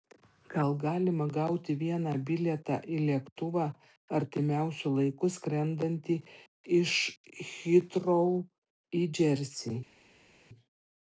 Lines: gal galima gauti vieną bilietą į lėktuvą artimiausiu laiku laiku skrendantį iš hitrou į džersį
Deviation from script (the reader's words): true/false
true